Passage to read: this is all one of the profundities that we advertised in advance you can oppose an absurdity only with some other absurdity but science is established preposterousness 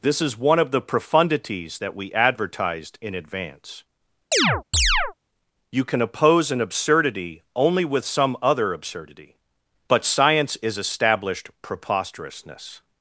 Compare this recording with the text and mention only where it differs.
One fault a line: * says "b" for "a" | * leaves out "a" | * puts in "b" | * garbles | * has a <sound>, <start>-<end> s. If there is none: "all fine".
* leaves out "all"
* has a chirp, 4.3-5.1 s